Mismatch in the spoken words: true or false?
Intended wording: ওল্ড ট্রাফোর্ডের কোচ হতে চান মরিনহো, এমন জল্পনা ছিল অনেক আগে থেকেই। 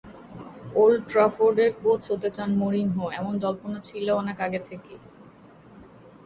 false